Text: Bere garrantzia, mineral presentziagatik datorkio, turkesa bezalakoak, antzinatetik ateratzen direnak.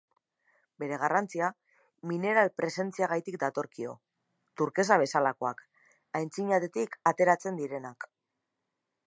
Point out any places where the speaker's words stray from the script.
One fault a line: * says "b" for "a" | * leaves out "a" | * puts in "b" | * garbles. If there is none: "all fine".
all fine